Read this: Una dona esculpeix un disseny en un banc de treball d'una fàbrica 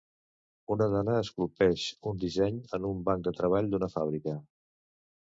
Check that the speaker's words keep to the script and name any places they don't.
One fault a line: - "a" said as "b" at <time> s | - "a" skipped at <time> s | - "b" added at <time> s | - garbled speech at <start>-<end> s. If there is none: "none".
none